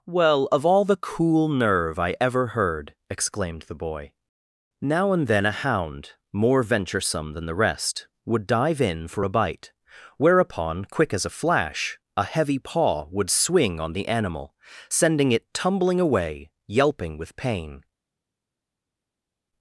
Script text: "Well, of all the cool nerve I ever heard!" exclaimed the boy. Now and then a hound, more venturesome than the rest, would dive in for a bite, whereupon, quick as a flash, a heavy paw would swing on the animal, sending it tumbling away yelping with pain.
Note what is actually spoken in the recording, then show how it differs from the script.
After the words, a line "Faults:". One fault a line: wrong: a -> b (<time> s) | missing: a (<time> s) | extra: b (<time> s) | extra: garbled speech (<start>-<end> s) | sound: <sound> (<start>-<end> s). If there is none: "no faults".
"Well, of all the cool nerve I ever heard!" exclaimed the boy. Now and then a hound, more venturesome than the rest, would dive in for a bite, whereupon, quick as a flash, a heavy paw would swing on the animal, sending it tumbling away yelping with pain.
Faults:
no faults